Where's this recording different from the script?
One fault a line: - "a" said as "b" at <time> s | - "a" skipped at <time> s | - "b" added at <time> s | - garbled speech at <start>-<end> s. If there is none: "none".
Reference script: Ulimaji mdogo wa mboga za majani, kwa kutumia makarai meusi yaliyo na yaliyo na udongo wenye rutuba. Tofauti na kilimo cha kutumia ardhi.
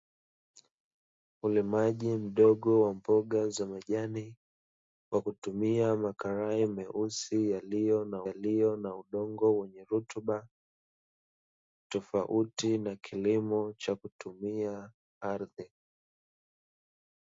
none